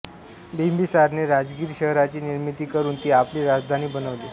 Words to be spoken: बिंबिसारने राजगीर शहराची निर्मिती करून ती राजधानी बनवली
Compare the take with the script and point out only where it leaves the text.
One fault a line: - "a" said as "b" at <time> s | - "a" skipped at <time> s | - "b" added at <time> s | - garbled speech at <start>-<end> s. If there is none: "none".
- "आपली" added at 3.1 s